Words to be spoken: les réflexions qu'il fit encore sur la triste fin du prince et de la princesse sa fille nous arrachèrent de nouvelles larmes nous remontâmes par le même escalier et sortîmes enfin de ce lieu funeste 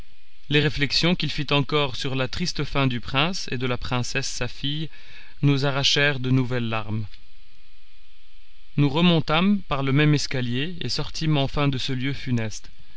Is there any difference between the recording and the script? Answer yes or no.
no